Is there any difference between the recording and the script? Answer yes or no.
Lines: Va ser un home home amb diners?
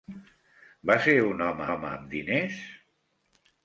no